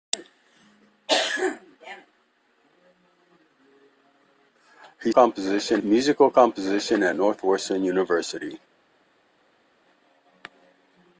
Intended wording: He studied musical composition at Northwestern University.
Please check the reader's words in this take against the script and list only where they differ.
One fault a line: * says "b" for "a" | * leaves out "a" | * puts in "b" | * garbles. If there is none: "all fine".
* says "composition" for "studied"